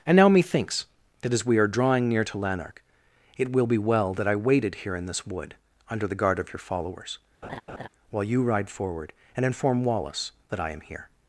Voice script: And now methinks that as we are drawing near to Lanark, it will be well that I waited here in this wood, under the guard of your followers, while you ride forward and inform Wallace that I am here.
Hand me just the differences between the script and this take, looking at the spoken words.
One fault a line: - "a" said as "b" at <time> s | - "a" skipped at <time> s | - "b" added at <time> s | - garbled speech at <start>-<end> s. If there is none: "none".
none